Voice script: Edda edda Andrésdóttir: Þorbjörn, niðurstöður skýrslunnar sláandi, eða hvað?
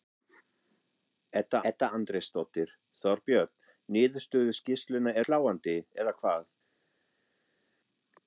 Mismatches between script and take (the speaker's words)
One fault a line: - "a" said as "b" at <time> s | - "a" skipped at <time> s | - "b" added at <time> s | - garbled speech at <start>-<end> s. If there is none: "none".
none